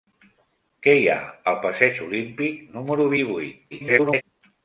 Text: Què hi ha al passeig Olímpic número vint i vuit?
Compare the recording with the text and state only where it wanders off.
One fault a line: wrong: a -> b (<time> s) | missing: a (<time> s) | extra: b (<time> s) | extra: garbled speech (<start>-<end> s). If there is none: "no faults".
missing: vint (3.1 s)
extra: garbled speech (3.7-4.2 s)